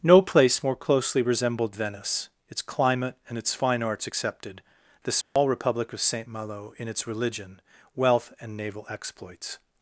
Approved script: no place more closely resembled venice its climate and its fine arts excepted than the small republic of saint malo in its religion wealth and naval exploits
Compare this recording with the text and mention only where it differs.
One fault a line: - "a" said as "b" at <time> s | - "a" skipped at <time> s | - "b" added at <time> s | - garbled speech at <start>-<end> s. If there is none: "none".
- "than" skipped at 4.6 s